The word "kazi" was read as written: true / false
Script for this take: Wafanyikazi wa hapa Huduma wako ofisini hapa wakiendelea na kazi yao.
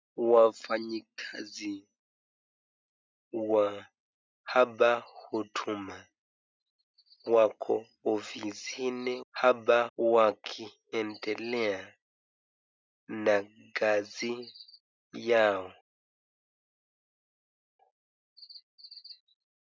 true